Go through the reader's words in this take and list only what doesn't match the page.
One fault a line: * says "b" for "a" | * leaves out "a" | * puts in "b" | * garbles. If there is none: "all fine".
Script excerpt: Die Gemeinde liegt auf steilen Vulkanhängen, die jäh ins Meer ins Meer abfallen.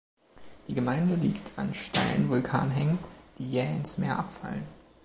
* says "an" for "auf"
* leaves out "ins Meer"